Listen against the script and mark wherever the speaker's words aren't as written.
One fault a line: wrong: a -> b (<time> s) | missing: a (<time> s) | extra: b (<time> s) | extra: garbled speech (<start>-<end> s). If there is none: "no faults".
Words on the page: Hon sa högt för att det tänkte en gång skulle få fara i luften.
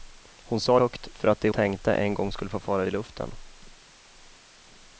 no faults